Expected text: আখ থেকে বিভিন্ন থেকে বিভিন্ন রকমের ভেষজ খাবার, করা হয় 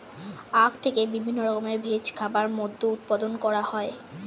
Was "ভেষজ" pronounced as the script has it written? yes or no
yes